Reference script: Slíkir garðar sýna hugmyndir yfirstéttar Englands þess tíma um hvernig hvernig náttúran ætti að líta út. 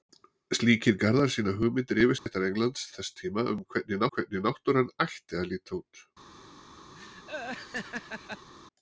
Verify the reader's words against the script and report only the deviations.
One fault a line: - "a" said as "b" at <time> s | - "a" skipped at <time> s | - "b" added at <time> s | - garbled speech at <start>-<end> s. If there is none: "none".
none